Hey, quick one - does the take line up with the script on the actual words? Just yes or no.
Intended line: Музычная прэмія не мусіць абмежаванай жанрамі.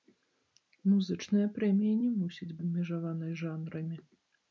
yes